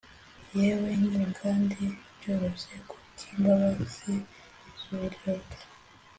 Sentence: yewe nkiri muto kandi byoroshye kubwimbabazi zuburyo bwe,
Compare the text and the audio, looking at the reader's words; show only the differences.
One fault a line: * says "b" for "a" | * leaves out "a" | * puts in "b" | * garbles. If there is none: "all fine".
* leaves out "muto"